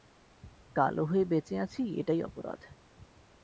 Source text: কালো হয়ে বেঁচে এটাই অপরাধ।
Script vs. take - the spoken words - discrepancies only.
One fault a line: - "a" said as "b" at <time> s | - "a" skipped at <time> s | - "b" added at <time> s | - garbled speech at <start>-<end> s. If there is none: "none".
- "আছি" added at 1.6 s